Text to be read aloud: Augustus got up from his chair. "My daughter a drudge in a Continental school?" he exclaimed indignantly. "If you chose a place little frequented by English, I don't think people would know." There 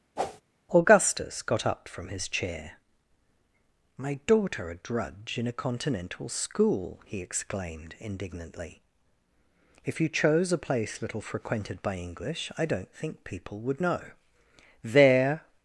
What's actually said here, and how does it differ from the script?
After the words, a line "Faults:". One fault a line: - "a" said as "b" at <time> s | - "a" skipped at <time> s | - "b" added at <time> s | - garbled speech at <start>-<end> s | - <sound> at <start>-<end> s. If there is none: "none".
Augustus got up from his chair. "My daughter a drudge in a Continental school?" he exclaimed indignantly. "If you chose a place little frequented by English, I don't think people would know." There
Faults:
- whoosh at 0.2-0.4 s